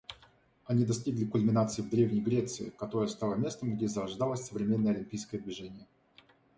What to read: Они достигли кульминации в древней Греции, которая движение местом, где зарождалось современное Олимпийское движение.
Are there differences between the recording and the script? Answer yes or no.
yes